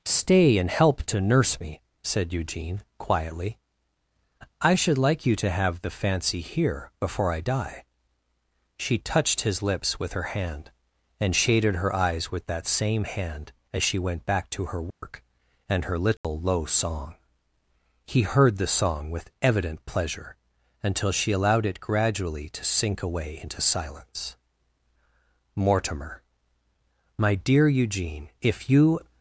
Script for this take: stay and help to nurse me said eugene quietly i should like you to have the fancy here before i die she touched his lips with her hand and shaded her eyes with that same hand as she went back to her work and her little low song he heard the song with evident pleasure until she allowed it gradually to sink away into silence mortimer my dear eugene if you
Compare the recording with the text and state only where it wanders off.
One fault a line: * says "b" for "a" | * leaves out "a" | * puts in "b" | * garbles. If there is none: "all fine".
all fine